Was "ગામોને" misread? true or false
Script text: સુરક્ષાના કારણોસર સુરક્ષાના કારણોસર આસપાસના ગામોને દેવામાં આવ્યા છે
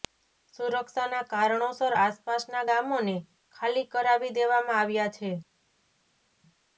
true